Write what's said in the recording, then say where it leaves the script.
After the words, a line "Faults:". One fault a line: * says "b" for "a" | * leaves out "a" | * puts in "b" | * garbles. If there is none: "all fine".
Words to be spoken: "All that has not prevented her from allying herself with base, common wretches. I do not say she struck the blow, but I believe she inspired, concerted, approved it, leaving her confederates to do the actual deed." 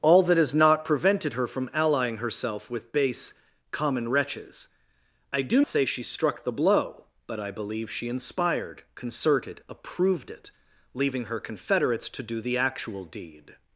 "All that has not prevented her from allying herself with base, common wretches. I do say she struck the blow, but I believe she inspired, concerted, approved it, leaving her confederates to do the actual deed."
Faults:
* leaves out "not"